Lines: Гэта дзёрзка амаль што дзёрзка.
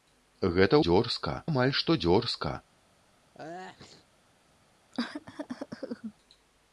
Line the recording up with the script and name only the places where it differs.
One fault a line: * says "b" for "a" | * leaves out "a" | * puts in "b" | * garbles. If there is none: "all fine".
all fine